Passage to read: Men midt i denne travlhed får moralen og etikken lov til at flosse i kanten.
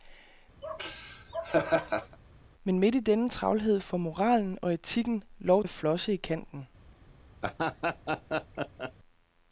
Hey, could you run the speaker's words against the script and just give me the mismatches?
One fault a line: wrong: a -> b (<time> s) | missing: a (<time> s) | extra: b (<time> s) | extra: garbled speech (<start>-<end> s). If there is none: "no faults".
missing: til (5.6 s)